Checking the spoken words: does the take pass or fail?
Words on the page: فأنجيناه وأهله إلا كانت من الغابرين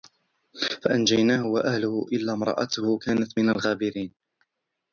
fail